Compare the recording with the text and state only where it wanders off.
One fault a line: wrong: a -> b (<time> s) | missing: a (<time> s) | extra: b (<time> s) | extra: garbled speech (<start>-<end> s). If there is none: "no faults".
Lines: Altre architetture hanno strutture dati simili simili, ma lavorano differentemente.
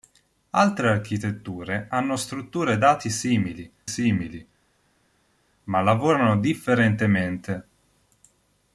no faults